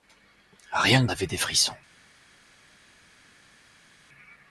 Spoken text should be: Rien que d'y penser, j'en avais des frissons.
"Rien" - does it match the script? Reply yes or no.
yes